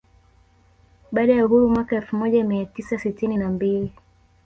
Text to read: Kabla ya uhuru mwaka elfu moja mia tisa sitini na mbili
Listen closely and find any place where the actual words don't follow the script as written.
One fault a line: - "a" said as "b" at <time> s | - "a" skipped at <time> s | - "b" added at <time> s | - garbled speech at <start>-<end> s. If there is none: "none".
- "Kabla" said as "Baada" at 1.1 s